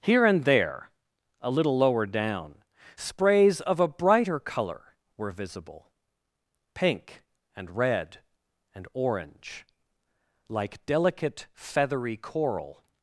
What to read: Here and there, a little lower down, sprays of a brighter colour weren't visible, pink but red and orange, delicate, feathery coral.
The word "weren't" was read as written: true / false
false